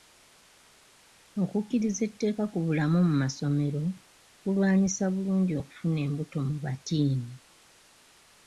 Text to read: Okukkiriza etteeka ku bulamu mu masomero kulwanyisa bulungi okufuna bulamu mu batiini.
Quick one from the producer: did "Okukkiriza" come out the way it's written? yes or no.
yes